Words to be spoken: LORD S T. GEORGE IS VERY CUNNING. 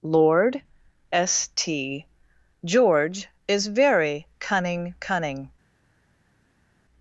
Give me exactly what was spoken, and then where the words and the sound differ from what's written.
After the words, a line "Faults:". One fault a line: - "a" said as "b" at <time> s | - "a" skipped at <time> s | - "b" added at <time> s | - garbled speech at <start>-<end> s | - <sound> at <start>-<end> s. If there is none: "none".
LORD S T. GEORGE IS VERY CUNNING CUNNING.
Faults:
- "CUNNING" added at 5.0 s